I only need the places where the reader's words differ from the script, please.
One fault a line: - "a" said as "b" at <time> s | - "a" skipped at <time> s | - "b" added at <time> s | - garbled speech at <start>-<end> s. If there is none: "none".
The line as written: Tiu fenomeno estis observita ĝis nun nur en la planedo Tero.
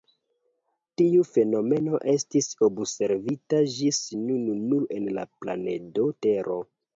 none